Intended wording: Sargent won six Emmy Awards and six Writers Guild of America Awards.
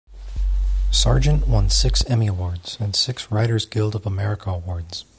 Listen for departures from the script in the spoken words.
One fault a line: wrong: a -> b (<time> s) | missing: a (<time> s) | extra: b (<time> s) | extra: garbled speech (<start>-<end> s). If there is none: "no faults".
no faults